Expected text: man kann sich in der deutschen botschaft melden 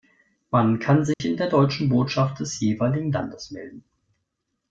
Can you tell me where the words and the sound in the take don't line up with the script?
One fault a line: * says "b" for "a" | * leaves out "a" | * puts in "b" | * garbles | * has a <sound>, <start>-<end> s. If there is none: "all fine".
* has a dropout, 1.1-1.2 s
* puts in "des jeweiligen landes"